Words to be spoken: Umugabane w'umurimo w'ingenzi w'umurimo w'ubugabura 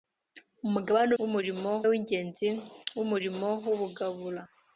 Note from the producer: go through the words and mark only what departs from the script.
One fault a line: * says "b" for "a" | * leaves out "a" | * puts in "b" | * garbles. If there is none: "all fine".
all fine